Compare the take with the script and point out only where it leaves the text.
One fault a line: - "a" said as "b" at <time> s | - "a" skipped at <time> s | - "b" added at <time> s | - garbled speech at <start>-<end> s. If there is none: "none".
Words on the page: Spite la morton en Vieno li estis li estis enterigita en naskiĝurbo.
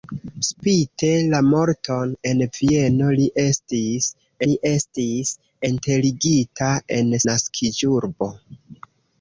none